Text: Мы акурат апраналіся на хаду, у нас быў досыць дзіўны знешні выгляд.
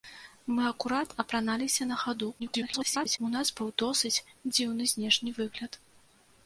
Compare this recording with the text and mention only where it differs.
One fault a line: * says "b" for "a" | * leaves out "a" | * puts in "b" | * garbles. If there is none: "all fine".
* garbles